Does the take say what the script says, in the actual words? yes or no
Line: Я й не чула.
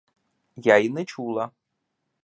yes